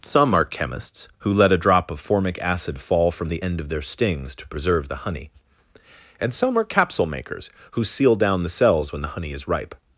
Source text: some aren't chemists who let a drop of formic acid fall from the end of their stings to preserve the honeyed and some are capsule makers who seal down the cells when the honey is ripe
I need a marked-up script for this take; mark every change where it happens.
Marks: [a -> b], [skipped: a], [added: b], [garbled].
some [aren't -> are] chemists who let a drop of formic acid fall from the end of their stings to preserve the [honeyed -> honey] and some are capsule makers who seal down the cells when the honey is ripe